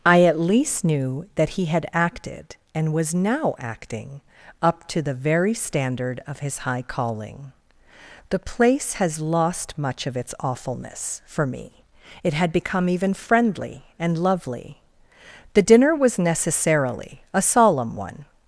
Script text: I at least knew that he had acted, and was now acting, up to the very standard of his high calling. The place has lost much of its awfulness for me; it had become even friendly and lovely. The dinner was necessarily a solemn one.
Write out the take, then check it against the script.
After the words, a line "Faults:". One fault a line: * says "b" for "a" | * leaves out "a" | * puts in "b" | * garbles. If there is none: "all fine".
I at least knew that he had acted, and was now acting, up to the very standard of his high calling. The place has lost much of its awfulness for me; it had become even friendly and lovely. The dinner was necessarily a solemn one.
Faults:
all fine